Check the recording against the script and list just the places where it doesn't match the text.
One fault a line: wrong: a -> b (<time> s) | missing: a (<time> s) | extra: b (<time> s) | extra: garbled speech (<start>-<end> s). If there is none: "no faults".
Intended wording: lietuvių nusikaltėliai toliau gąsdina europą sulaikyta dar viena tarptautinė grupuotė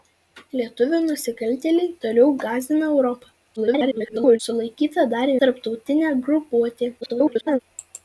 extra: garbled speech (3.6-4.4 s)
missing: viena (5.3 s)
extra: garbled speech (7.0-7.6 s)